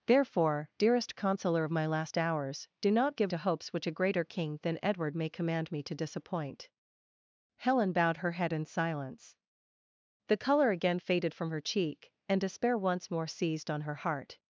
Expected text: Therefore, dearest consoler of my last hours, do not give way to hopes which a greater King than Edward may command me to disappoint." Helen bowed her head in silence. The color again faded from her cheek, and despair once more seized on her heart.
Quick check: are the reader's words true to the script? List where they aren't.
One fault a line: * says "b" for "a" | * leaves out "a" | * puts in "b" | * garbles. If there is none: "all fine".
* leaves out "way"